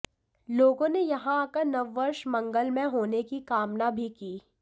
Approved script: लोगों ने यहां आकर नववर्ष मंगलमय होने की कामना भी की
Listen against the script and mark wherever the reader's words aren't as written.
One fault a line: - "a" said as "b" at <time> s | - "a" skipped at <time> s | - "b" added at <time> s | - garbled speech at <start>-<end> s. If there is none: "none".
none